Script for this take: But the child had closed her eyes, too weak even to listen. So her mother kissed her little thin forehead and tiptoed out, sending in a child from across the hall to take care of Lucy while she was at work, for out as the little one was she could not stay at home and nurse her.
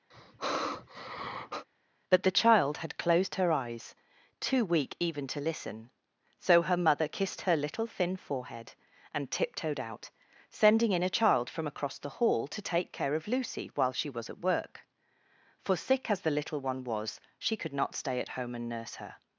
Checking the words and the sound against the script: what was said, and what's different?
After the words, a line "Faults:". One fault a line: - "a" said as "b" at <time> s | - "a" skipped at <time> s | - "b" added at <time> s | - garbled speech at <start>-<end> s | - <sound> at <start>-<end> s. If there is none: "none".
But the child had closed her eyes, too weak even to listen. So her mother kissed her little thin forehead and tiptoed out, sending in a child from across the hall to take care of Lucy while she was at work, for sick as the little one was she could not stay at home and nurse her.
Faults:
- sigh at 0.1-1.7 s
- "out" said as "sick" at 15.7 s